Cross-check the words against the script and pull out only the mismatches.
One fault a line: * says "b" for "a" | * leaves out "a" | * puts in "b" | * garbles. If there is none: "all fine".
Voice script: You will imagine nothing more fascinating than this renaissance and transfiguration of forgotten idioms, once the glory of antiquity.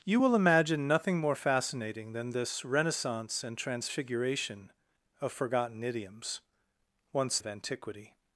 * leaves out "the glory"